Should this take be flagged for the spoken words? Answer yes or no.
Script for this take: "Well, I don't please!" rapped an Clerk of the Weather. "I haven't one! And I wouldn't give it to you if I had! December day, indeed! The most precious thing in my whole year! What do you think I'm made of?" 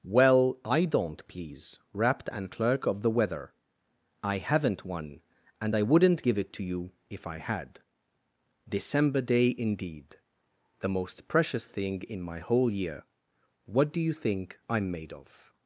no